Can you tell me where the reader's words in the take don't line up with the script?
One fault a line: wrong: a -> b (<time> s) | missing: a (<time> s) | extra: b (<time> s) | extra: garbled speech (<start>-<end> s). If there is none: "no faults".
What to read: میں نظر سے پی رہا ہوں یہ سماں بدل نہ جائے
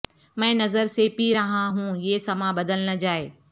no faults